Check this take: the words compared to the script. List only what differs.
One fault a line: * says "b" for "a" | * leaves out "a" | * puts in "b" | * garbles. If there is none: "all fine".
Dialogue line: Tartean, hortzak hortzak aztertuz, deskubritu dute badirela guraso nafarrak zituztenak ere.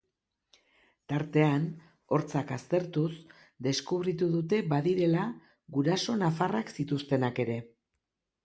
* leaves out "hortzak"